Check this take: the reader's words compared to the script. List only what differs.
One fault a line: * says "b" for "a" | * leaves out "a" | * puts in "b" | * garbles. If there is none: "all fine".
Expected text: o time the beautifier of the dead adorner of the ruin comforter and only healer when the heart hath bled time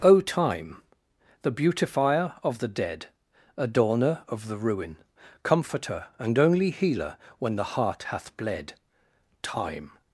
all fine